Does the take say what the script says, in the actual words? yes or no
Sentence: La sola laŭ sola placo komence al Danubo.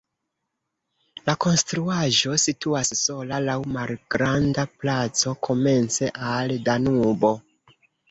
no